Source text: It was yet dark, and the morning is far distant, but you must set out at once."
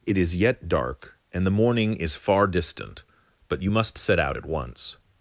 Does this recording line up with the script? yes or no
no